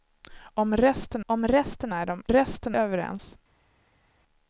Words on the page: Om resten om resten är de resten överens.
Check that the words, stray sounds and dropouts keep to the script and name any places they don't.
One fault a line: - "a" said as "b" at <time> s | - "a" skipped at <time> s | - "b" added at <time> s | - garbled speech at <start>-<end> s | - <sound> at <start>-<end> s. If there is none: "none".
none